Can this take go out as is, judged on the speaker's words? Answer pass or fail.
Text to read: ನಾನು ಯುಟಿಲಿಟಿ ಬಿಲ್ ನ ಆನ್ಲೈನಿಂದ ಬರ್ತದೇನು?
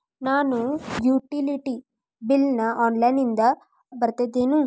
pass